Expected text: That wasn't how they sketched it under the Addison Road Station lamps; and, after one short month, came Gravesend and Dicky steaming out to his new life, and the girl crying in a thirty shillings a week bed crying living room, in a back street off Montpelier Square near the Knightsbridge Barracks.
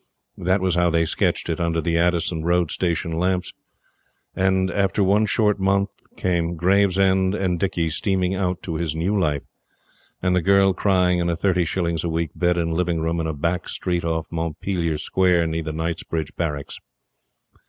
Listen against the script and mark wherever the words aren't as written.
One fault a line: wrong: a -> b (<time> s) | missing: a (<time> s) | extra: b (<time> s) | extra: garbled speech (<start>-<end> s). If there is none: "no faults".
wrong: wasn't -> was (0.6 s)
wrong: crying -> and (12.6 s)